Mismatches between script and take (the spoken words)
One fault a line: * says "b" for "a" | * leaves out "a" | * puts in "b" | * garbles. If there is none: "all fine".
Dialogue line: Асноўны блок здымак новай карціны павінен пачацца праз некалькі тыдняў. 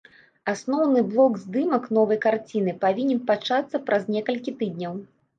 all fine